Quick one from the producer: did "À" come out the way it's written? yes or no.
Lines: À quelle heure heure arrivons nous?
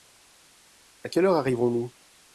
yes